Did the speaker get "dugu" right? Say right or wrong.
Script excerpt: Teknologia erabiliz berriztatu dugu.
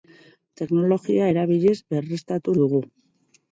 right